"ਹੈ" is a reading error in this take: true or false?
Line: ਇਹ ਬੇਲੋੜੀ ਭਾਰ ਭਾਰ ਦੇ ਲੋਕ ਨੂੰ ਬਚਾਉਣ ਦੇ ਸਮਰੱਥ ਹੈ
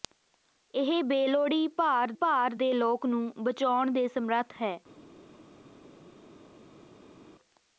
false